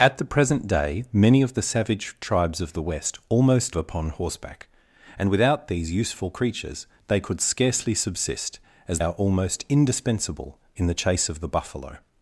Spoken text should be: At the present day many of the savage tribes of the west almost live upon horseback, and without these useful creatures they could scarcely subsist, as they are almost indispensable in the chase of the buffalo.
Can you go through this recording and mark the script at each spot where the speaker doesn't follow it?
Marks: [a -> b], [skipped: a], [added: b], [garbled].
At the present day many of the savage tribes of the west almost [skipped: live] upon horseback, and without these useful creatures they could scarcely subsist, as [skipped: they] are almost indispensable in the chase of the buffalo.